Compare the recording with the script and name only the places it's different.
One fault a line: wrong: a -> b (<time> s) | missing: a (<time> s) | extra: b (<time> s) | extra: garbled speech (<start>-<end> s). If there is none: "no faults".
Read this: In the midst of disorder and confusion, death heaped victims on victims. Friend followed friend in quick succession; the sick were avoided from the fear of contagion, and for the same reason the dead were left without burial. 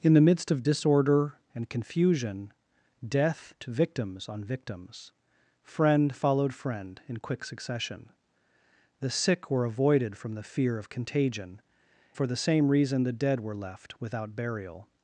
missing: heaped (3.5 s)
missing: and (11.6 s)